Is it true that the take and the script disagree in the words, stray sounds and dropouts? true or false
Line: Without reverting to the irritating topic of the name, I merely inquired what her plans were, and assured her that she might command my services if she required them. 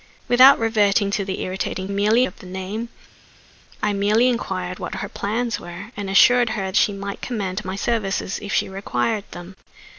true